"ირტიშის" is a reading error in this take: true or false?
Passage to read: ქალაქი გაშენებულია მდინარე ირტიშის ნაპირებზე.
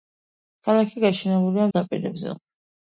true